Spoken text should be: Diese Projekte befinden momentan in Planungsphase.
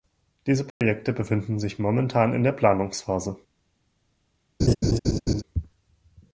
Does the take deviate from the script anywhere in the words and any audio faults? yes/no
yes